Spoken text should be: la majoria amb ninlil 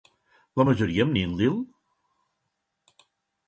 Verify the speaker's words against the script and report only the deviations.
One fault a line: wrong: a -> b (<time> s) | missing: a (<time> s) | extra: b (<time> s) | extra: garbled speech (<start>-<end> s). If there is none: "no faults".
no faults